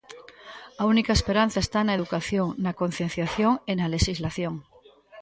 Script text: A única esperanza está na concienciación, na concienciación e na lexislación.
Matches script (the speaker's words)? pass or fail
fail